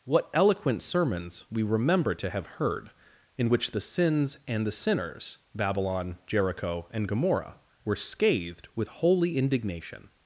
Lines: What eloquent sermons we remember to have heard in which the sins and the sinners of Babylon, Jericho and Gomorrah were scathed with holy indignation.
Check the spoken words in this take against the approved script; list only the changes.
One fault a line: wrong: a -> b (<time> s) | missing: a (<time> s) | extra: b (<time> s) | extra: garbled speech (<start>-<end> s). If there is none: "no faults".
missing: of (5.4 s)